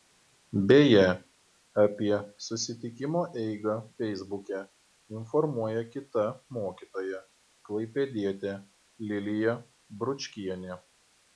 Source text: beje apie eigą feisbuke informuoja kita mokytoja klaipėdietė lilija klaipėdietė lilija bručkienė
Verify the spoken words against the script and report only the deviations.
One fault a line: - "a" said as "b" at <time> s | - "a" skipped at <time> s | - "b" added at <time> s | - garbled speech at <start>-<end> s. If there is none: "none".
- "susitikimo" added at 2.5 s
- "klaipėdietė lilija" skipped at 9.6 s